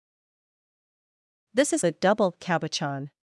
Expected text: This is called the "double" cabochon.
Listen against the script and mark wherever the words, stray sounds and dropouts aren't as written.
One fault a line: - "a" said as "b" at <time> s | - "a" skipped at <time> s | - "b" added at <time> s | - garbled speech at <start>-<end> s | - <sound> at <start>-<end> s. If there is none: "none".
- "called" skipped at 1.8 s